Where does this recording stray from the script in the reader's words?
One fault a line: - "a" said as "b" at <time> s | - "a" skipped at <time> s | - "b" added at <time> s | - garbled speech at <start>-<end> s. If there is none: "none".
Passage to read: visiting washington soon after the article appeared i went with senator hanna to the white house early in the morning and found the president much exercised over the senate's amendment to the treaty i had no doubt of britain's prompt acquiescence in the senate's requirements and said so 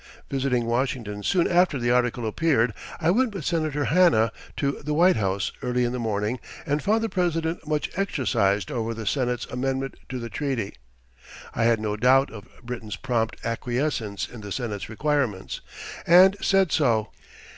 none